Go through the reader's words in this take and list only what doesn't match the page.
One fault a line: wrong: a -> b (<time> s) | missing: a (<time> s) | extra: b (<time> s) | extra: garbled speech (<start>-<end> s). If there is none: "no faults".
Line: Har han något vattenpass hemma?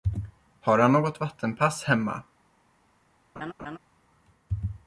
no faults